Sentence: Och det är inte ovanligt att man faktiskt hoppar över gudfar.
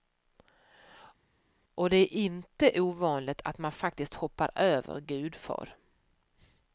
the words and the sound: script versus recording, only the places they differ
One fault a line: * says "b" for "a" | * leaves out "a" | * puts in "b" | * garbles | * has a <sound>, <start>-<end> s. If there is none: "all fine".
all fine